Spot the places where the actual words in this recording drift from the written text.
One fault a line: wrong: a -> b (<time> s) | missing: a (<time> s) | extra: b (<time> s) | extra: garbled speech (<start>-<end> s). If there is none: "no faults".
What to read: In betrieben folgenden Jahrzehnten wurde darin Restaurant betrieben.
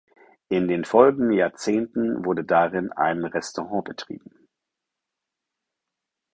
wrong: betrieben -> den (0.7 s)
extra: ein (2.9 s)